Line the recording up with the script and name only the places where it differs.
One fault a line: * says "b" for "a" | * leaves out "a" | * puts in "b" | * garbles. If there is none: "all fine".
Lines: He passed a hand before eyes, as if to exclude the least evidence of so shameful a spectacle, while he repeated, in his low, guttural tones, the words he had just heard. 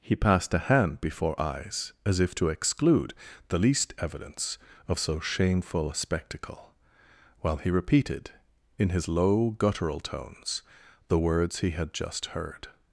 all fine